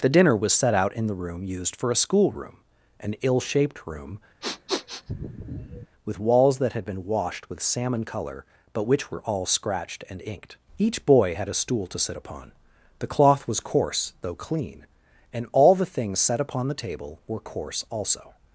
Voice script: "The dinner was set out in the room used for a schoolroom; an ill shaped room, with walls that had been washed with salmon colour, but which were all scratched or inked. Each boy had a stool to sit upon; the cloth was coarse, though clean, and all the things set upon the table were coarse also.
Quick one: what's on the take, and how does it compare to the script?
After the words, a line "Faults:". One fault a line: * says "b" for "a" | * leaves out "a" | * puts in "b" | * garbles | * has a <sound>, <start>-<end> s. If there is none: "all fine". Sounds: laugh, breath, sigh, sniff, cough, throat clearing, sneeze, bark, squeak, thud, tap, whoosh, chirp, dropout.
"The dinner was set out in the room used for a schoolroom; an ill shaped room, with walls that had been washed with salmon colour, but which were all scratched and inked. Each boy had a stool to sit upon; the cloth was coarse, though clean, and all the things set upon the table were coarse also.
Faults:
* has a sniff, 4.4-5.9 s
* says "and" for "or"